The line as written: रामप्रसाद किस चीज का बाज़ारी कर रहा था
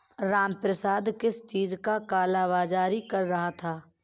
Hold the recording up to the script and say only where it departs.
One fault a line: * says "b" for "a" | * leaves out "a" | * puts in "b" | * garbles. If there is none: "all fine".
* puts in "काला"